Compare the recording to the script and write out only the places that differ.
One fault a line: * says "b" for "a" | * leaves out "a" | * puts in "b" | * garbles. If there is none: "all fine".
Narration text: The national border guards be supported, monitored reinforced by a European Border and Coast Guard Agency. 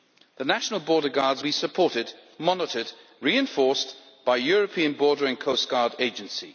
all fine